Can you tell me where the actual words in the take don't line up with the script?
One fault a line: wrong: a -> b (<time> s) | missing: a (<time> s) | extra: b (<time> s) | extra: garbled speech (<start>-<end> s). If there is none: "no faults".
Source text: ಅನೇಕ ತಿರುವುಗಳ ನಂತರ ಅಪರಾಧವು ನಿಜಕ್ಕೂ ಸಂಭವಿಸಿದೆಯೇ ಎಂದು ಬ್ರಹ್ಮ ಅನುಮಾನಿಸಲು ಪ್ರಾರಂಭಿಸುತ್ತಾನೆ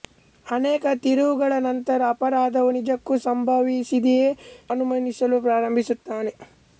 missing: ಎಂದು ಬ್ರಹ್ಮ (4.3 s)